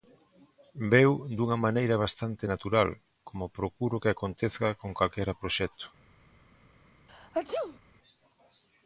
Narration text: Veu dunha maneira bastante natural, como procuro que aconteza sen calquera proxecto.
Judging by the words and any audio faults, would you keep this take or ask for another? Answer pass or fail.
fail